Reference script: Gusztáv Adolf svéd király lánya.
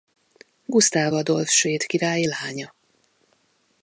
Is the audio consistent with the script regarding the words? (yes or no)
yes